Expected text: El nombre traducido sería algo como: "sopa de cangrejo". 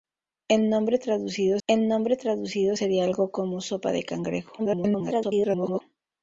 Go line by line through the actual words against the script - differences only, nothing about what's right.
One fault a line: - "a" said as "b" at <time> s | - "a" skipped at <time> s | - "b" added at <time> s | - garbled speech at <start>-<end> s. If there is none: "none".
- "el nombre traducido" added at 1.7 s
- garbled speech at 4.6-5.8 s